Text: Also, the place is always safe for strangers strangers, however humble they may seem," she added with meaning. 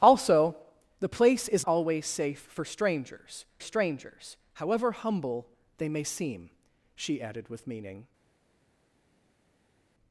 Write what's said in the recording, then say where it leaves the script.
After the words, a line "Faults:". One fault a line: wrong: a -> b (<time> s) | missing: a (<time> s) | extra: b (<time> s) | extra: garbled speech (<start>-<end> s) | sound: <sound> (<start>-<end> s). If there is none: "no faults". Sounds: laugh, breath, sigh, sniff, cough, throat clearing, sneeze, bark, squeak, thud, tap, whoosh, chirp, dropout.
Also, the place is always safe for strangers strangers, however humble they may seem," she added with meaning.
Faults:
no faults